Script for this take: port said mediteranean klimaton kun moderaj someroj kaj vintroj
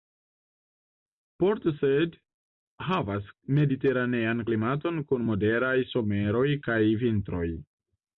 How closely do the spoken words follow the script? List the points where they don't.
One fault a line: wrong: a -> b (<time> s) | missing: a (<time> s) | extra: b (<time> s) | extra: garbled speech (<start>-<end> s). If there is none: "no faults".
extra: havas (2.9 s)